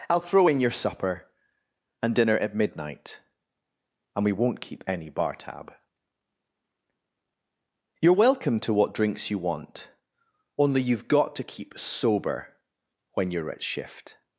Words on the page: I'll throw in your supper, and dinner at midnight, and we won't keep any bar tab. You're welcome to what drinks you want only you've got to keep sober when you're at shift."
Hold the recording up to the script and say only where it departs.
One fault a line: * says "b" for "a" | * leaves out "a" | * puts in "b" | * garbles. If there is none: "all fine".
all fine